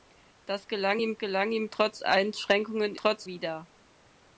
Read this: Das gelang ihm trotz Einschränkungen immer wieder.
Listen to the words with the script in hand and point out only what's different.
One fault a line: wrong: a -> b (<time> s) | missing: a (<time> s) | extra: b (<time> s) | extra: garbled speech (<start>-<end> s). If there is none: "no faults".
extra: gelang ihm (1.2 s)
wrong: immer -> trotz (3.0 s)